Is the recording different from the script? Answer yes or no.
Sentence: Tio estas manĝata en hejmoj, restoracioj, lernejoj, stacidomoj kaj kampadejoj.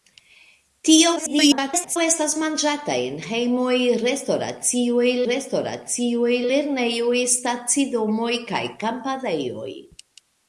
yes